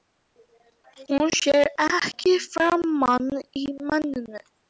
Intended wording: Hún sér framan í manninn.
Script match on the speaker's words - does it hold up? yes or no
no